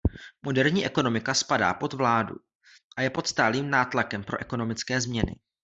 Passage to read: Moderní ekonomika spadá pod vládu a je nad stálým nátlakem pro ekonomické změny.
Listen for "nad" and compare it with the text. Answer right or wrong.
wrong